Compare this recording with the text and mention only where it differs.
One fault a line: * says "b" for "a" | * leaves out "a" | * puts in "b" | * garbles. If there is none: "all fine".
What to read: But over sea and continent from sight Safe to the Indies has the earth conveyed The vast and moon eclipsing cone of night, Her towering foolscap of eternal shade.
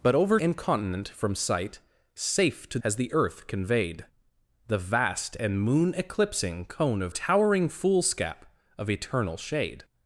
* leaves out "sea"
* leaves out "the Indies"
* leaves out "night Her"